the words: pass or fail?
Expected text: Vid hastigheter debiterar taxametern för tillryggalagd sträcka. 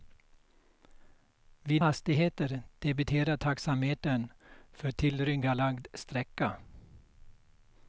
pass